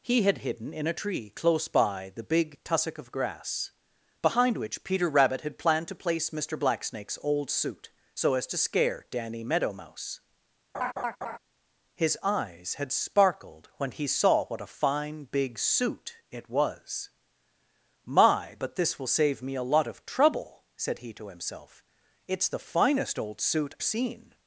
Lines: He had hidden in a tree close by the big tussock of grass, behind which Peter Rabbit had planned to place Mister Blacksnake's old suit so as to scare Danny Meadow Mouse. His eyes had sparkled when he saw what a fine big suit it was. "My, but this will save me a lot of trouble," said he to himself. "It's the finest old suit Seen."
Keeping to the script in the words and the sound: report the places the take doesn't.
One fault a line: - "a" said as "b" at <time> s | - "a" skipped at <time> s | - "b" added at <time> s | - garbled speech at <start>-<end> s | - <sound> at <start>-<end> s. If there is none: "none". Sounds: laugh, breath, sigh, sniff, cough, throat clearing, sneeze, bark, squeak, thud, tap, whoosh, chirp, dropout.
- laugh at 10.7-11.4 s